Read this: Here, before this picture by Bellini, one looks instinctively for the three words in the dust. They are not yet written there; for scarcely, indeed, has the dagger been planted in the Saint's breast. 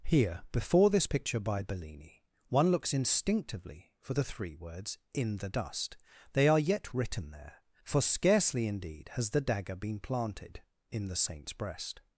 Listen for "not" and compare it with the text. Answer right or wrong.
wrong